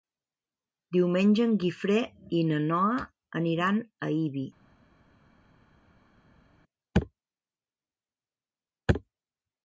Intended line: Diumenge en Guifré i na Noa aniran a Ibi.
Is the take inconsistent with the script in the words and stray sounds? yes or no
no